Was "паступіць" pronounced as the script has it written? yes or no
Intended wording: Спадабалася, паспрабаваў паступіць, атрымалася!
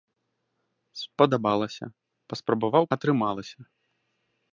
no